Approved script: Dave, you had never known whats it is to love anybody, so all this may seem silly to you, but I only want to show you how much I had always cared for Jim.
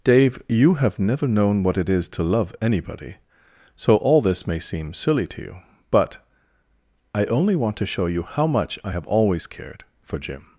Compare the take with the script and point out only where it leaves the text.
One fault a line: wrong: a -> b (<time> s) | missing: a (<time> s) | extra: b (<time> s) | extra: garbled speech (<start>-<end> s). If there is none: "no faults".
wrong: had -> have (0.8 s)
wrong: whats -> what (1.6 s)
wrong: had -> have (8.9 s)